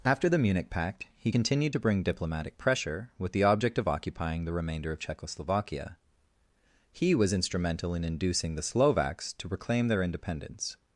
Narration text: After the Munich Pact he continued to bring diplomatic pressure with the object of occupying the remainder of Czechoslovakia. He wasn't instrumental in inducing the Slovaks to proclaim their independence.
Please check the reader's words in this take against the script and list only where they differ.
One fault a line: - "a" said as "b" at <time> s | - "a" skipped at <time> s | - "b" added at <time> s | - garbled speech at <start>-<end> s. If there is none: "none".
- "wasn't" said as "was" at 7.1 s